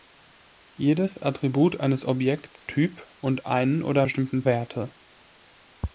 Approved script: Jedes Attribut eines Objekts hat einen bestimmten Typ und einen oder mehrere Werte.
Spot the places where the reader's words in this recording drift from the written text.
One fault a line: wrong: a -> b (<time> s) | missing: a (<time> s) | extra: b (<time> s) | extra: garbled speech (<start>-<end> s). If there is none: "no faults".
missing: hat einen bestimmten (2.7 s)
wrong: mehrere -> bestimmten (4.0 s)